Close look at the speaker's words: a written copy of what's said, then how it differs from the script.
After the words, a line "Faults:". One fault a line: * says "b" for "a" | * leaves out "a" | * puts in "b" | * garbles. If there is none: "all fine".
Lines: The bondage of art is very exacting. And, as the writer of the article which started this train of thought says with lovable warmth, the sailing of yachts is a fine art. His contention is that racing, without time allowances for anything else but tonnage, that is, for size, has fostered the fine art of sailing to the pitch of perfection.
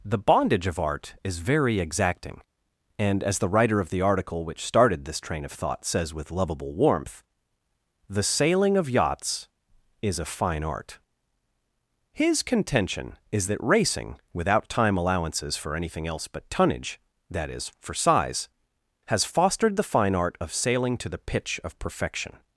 The bondage of art is very exacting. And, as the writer of the article which started this train of thought says with lovable warmth, the sailing of yachts is a fine art. His contention is that racing, without time allowances for anything else but tonnage, that is, for size, has fostered the fine art of sailing to the pitch of perfection.
Faults:
all fine